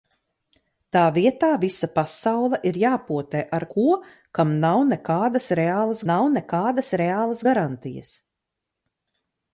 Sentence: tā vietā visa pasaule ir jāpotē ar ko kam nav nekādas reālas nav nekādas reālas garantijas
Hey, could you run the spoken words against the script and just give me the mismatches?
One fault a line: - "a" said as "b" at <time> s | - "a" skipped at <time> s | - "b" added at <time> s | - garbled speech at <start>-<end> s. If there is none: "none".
none